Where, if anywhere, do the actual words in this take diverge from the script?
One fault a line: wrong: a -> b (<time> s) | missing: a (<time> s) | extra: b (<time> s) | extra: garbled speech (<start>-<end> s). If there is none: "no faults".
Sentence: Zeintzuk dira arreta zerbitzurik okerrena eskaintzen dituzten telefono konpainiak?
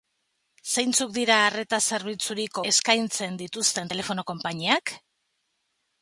missing: okerrena (2.6 s)